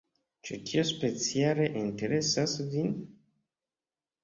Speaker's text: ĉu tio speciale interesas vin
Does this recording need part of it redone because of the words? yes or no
no